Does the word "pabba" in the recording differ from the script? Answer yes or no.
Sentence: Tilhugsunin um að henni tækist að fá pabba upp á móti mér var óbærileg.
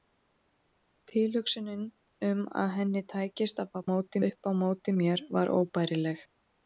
yes